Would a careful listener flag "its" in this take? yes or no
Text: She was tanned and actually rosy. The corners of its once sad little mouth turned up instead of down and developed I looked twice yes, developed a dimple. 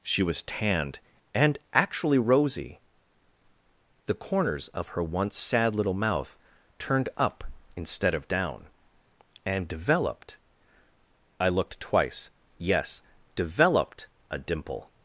yes